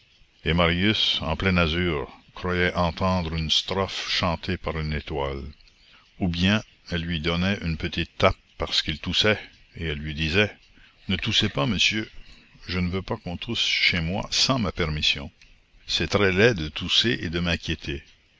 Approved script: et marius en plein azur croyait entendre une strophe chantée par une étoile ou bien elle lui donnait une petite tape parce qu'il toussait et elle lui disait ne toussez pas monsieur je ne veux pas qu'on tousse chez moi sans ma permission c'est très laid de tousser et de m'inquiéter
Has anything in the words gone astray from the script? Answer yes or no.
no